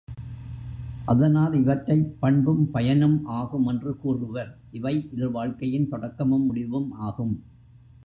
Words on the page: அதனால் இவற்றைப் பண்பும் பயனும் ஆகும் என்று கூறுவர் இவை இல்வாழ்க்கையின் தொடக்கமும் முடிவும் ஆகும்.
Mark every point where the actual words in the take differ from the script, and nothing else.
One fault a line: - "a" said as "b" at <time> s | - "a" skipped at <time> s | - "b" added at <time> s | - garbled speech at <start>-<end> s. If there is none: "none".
none